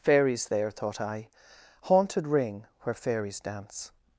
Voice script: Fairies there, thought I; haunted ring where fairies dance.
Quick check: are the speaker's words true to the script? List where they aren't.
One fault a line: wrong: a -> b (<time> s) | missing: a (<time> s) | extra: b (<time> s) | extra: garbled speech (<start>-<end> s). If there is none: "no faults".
no faults